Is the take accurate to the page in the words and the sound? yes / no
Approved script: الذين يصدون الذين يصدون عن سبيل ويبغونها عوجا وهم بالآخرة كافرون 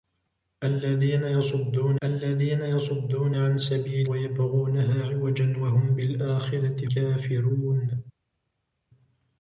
yes